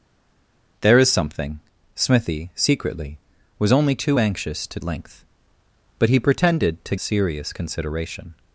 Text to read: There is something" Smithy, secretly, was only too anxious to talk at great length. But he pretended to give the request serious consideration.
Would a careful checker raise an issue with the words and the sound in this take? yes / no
yes